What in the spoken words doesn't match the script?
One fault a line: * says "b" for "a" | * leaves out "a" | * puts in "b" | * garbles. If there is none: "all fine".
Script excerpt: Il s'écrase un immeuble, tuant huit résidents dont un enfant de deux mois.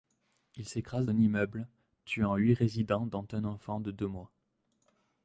all fine